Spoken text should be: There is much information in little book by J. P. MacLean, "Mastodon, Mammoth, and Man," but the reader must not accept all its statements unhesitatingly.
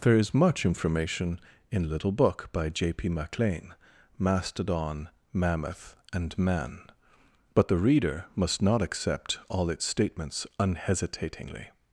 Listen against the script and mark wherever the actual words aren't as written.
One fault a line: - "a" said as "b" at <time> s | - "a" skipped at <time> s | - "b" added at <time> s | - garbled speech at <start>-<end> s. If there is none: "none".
none